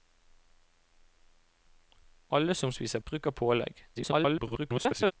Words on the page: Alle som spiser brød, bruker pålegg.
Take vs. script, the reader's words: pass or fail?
fail